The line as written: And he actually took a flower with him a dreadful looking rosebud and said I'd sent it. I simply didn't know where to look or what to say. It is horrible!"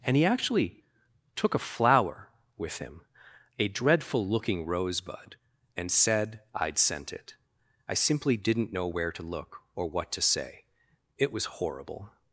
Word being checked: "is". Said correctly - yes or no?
no